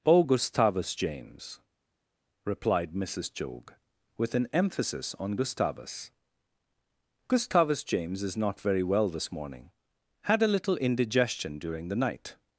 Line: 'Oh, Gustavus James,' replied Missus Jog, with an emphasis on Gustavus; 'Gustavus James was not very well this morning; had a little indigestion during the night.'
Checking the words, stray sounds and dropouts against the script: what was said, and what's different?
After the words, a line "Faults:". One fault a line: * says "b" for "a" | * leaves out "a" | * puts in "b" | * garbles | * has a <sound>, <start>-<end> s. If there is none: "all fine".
'Oh, Gustavus James,' replied Missus Jog, with an emphasis on Gustavus; 'Gustavus James is not very well this morning; had a little indigestion during the night.'
Faults:
* says "is" for "was"